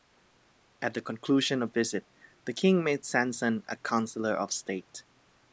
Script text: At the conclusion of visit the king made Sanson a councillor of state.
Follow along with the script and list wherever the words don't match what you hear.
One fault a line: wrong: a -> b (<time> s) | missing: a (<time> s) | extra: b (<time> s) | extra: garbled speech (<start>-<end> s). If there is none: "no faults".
no faults